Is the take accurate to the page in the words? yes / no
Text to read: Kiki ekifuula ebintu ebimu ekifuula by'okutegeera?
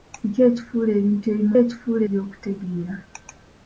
yes